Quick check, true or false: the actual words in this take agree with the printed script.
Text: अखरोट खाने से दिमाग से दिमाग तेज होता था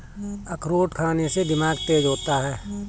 false